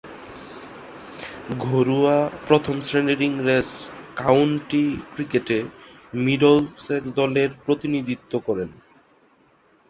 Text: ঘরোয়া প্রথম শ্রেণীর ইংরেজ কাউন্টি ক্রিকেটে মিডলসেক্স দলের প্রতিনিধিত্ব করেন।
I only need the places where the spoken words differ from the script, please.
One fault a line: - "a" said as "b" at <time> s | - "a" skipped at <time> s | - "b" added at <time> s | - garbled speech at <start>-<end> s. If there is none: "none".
none